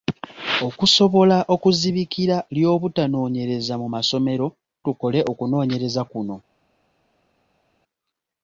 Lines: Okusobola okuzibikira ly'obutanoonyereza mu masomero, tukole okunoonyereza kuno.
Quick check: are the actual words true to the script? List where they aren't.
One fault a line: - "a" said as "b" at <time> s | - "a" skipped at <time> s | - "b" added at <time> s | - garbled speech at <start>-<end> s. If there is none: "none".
none